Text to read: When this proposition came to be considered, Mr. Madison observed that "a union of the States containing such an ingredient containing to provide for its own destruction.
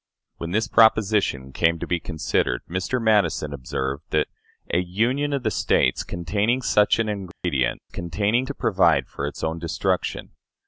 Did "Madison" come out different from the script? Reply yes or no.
no